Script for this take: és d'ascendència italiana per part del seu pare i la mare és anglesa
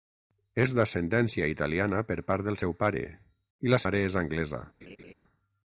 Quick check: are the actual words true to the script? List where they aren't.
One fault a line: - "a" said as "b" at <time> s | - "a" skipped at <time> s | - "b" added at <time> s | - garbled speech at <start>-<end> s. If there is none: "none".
none